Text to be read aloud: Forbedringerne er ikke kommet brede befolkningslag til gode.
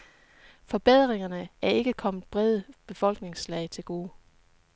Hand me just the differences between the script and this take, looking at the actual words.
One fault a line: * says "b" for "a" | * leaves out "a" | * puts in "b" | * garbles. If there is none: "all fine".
all fine